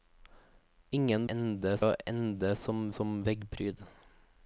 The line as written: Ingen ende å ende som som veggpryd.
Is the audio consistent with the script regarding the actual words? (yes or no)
yes